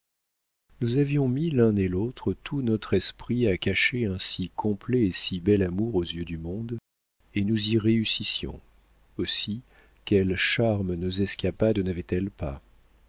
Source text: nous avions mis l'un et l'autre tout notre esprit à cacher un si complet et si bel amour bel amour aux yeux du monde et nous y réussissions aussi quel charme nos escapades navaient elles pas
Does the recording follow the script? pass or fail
fail